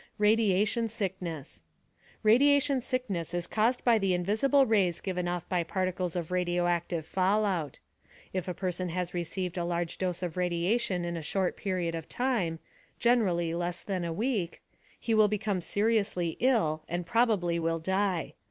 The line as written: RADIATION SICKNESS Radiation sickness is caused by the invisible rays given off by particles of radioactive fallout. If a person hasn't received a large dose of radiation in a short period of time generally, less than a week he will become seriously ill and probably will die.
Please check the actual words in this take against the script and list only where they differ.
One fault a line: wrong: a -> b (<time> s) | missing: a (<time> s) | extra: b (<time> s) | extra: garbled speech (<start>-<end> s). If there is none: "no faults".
wrong: hasn't -> has (8.9 s)